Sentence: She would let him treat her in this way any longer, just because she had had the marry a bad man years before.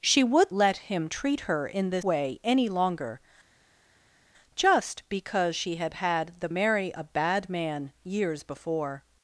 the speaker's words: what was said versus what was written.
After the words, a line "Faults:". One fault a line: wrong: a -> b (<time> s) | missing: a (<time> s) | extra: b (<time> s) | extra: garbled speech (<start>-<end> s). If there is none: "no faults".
She would let him treat her in this way any longer, just because she had had the marry a bad man years before.
Faults:
no faults